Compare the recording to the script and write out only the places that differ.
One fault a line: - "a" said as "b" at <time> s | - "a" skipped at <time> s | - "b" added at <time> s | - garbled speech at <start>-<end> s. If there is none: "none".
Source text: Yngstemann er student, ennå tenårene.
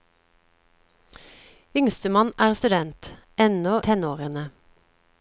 none